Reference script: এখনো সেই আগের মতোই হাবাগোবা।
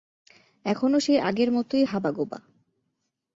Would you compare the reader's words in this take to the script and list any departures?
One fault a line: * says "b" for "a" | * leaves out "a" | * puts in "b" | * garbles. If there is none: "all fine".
all fine